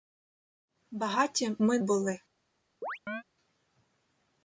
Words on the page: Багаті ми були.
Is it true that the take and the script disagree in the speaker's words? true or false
false